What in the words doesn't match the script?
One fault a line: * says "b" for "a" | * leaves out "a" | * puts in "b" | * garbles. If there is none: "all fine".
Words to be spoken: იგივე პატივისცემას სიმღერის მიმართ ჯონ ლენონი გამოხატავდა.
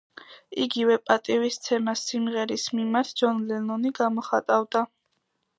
all fine